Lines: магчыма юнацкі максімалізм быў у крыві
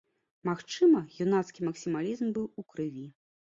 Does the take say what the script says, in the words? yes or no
yes